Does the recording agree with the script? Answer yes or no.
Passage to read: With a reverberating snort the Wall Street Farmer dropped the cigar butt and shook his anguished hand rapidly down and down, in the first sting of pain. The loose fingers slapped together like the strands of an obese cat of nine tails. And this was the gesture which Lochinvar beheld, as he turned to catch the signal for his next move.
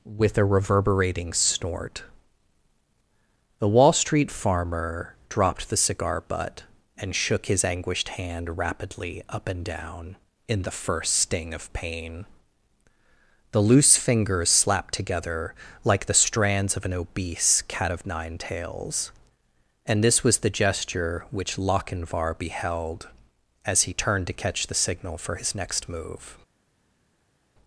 no